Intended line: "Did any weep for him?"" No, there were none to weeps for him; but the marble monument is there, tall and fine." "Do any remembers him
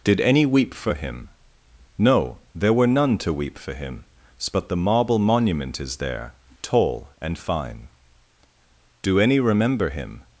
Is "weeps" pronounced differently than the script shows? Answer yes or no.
yes